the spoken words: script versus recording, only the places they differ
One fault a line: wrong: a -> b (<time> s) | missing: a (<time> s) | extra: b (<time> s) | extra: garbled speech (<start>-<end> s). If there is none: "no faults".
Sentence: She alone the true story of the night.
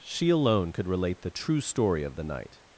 extra: could relate (0.7 s)